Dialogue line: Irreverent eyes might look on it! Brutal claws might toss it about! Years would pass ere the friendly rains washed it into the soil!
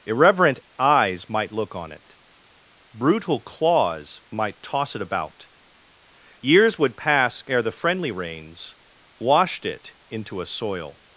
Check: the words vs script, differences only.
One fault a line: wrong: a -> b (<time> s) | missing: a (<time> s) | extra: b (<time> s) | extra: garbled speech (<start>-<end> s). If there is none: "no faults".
wrong: the -> a (10.4 s)